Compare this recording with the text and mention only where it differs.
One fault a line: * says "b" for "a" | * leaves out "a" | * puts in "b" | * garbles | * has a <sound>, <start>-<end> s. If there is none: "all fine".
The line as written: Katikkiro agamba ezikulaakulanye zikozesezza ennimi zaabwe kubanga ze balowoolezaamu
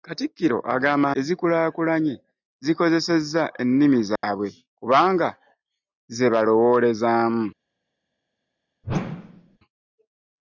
* has a dropout, 4.2-4.2 s
* has a whoosh, 8.8-9.6 s